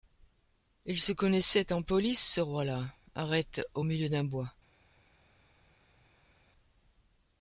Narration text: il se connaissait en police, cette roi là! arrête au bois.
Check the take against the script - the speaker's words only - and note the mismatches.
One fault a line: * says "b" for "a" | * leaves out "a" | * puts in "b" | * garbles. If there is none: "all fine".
* says "ce" for "cette"
* puts in "milieu d'un"